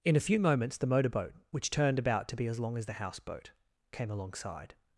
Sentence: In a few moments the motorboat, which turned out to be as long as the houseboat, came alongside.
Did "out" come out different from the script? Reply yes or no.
yes